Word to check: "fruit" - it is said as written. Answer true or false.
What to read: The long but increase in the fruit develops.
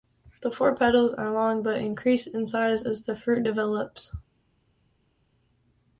true